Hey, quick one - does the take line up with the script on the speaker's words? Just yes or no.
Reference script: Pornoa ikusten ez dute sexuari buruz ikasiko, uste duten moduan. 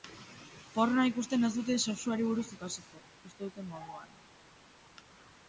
yes